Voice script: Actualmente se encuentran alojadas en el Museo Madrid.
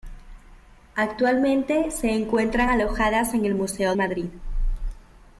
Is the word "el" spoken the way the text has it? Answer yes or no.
yes